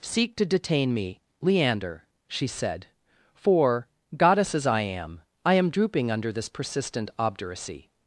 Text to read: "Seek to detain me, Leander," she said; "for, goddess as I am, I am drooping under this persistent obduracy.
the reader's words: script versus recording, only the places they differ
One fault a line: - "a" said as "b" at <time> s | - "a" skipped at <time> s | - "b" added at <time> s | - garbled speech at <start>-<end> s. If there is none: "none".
none